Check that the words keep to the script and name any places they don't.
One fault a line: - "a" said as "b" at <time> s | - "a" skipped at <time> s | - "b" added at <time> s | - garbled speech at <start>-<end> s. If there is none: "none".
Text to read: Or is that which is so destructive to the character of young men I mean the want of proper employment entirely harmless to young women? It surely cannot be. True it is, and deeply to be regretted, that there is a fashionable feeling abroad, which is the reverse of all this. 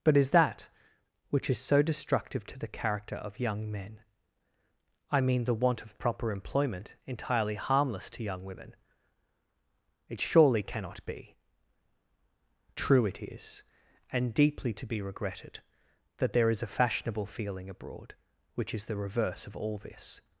- "Or" said as "But" at 0.0 s